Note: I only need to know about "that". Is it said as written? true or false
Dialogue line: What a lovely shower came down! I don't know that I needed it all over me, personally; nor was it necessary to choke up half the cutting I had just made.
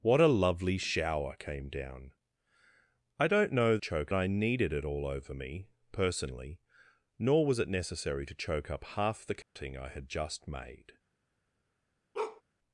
false